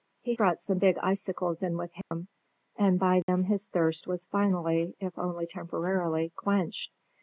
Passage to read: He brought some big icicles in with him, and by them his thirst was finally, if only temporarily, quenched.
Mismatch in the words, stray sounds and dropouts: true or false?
true